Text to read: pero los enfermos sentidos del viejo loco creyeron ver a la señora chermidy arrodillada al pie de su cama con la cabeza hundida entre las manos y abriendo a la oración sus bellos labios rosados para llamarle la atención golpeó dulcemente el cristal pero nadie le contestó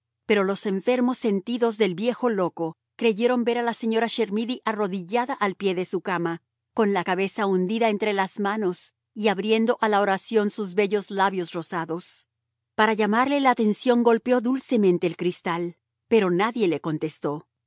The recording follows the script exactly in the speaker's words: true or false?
true